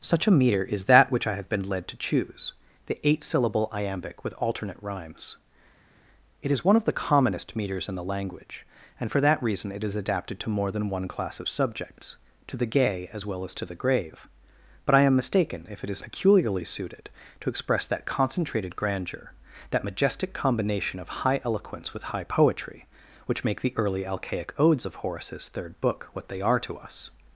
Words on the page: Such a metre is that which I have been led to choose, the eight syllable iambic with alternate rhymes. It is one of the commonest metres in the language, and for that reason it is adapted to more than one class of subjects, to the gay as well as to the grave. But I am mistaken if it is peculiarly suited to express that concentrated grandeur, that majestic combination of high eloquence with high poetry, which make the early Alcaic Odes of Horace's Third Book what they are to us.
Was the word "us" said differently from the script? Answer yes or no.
no